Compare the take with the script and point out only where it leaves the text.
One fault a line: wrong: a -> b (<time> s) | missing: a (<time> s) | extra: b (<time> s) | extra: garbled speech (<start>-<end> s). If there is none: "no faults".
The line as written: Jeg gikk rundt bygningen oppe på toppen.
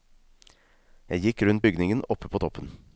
no faults